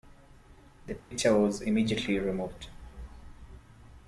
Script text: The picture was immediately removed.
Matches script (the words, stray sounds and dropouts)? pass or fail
fail